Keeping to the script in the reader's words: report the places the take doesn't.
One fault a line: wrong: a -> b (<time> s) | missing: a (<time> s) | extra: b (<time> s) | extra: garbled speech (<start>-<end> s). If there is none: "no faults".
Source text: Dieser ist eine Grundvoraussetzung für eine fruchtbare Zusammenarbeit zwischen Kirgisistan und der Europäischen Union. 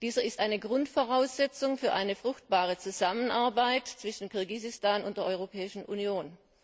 no faults